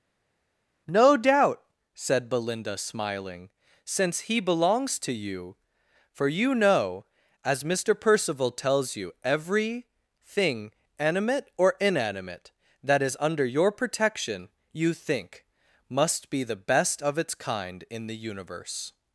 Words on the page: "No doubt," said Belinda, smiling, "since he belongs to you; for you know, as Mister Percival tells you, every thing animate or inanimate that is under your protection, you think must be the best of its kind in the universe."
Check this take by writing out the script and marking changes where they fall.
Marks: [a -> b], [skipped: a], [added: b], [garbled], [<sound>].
"No doubt," said Belinda, smiling, "since he belongs to you; for you know, as Mister Percival tells you, every thing animate or inanimate that is under your protection, you think must be the best of its kind in the universe."